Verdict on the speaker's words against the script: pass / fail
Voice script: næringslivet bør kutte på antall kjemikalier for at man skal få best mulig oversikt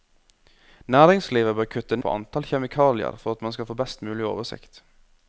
pass